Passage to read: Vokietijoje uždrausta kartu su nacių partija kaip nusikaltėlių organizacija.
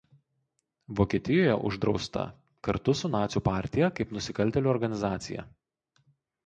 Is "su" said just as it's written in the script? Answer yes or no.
yes